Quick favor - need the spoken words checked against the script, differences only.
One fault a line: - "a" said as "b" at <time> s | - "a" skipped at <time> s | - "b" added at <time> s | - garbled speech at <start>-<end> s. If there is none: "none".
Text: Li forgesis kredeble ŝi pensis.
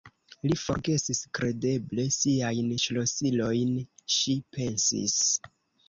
- "siajn ŝlosilojn" added at 2.2 s